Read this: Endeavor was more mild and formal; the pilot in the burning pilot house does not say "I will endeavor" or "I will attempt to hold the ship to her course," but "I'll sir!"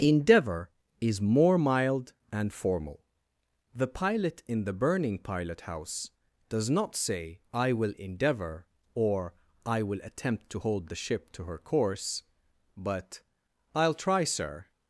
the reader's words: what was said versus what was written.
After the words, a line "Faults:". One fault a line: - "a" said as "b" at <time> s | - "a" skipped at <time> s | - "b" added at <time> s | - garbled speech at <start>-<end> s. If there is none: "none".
Endeavor is more mild and formal; the pilot in the burning pilot house does not say "I will endeavor" or "I will attempt to hold the ship to her course," but "I'll try, sir!"
Faults:
- "was" said as "is" at 1.0 s
- "try" added at 13.9 s